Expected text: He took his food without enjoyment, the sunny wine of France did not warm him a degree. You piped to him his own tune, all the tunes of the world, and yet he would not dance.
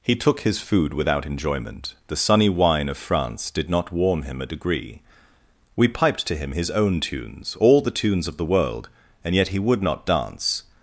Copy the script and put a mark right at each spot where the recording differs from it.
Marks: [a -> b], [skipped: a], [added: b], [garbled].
He took his food without enjoyment, the sunny wine of France did not warm him a degree. [You -> We] piped to him his own [tune, -> tunes] all the tunes of the world, and yet he would not dance.